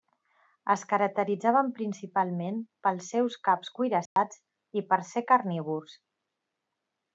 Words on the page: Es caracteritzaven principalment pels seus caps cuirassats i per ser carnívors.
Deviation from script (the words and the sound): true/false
true